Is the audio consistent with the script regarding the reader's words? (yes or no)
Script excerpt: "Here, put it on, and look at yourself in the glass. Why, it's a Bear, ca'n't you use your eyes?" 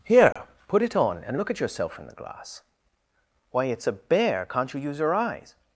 yes